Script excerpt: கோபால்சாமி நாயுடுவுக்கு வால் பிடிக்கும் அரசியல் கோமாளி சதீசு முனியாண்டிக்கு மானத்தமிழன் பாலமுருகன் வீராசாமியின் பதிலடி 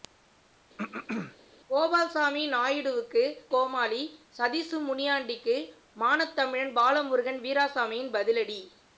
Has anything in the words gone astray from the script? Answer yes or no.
yes